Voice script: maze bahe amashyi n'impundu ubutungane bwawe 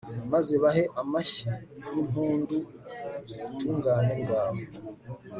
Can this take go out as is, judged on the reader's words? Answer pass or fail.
pass